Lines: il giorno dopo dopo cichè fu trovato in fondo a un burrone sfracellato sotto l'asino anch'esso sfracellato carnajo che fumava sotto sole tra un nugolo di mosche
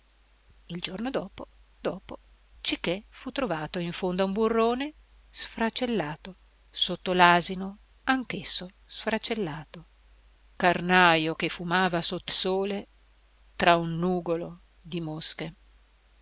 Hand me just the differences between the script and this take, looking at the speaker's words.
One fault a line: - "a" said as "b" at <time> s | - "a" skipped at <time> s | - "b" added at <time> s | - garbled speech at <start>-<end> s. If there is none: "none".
none